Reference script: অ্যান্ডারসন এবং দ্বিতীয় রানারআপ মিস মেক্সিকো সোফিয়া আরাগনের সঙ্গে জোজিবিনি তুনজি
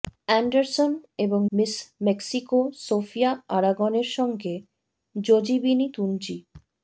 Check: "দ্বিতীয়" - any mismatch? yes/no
yes